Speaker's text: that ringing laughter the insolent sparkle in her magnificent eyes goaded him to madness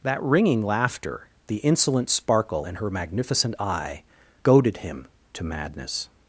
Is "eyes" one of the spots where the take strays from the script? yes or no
yes